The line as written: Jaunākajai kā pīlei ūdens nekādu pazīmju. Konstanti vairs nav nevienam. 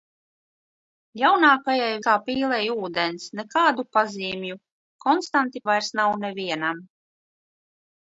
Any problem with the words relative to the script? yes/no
no